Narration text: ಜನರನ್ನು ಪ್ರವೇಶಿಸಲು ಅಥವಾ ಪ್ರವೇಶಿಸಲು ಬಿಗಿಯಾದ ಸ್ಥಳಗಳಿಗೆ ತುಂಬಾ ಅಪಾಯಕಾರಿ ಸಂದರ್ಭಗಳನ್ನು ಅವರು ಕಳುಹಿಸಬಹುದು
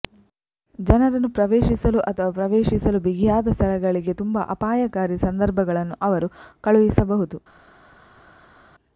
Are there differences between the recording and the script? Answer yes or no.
no